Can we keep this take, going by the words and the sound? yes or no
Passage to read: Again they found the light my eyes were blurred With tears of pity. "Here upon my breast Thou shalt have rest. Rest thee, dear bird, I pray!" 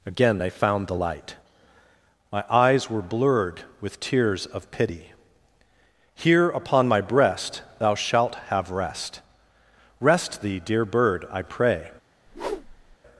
no